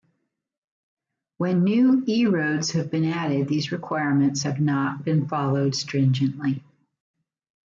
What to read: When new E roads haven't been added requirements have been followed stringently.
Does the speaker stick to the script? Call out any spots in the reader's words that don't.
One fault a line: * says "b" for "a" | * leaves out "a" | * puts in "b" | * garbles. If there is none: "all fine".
* says "have" for "haven't"
* puts in "these"
* puts in "not"